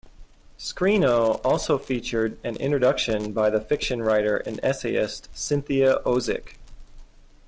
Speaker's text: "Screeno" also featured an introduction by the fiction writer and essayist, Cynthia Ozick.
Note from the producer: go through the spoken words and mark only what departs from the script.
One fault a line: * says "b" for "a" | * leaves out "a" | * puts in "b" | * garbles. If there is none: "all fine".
all fine